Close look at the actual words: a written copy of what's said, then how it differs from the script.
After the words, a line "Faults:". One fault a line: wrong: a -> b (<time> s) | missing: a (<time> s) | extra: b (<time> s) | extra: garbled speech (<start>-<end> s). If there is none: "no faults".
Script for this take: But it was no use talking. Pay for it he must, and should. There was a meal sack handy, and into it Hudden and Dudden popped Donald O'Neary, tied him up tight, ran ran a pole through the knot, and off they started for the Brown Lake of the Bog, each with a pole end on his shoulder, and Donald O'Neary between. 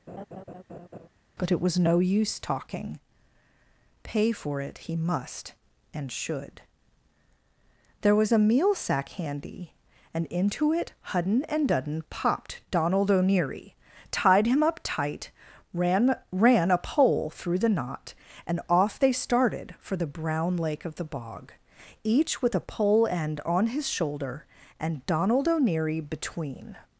But it was no use talking. Pay for it he must, and should. There was a meal sack handy, and into it Hudden and Dudden popped Donald O'Neary, tied him up tight, ran ran a pole through the knot, and off they started for the Brown Lake of the Bog, each with a pole end on his shoulder, and Donald O'Neary between.
Faults:
no faults